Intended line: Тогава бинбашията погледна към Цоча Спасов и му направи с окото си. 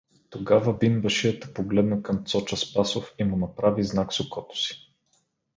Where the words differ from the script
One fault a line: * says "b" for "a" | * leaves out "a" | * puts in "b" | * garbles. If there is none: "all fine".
* puts in "знак"